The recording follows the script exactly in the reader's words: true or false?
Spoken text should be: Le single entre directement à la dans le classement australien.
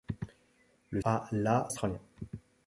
false